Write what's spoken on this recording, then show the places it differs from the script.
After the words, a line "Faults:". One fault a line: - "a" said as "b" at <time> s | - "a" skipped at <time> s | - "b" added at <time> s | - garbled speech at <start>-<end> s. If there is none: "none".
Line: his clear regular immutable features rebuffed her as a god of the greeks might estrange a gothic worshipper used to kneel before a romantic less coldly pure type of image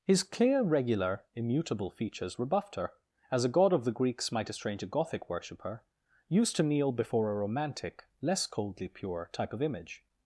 his clear regular immutable features rebuffed her as a god of the greeks might estrange a gothic worshipper used to kneel before a romantic less coldly pure type of image
Faults:
none